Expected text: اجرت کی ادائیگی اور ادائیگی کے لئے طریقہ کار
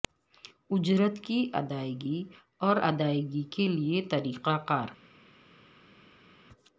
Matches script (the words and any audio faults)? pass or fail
pass